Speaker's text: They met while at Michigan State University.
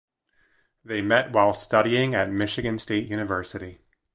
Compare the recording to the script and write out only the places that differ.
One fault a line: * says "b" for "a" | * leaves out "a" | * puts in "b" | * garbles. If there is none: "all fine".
* puts in "studying"